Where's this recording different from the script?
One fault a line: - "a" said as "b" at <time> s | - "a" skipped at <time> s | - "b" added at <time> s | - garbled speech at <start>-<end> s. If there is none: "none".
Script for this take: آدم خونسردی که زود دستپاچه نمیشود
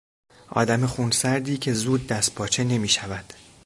none